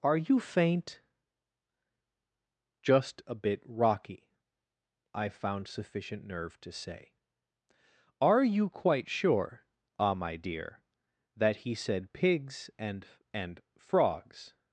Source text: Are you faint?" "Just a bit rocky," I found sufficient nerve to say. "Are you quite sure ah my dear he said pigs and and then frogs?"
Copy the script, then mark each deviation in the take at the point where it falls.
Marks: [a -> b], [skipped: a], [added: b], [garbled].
Are you faint?" "Just a bit rocky," I found sufficient nerve to say. "Are you quite sure ah my dear [added: that] he said pigs and and [skipped: then] frogs?"